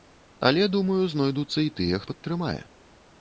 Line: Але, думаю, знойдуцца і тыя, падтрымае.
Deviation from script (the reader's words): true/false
false